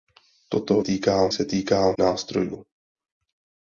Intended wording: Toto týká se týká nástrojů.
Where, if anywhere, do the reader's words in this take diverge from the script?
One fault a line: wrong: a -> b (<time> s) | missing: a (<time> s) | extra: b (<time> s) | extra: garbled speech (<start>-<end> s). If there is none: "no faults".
no faults